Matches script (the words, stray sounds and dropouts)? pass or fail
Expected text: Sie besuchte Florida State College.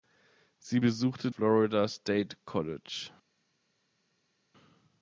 pass